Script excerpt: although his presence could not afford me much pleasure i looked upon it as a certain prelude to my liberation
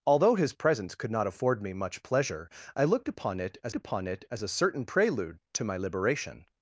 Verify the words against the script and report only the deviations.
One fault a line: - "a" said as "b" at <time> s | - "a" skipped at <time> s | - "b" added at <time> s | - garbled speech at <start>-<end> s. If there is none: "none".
- "upon it as" added at 3.7 s